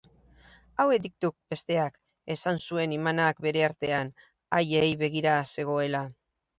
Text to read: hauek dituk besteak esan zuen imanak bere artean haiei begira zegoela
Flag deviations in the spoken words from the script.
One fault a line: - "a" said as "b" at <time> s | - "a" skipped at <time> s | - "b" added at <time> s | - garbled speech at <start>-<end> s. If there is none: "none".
none